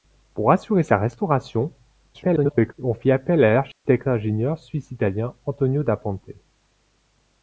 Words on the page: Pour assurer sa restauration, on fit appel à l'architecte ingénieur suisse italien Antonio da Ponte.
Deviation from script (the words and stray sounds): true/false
true